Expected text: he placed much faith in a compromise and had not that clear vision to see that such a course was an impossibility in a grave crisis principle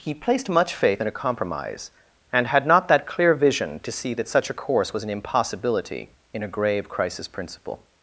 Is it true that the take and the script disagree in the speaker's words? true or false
false